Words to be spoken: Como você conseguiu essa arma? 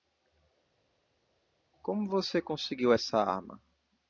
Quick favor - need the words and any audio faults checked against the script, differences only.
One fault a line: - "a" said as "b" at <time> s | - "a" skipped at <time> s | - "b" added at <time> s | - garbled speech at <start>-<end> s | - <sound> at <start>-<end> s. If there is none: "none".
none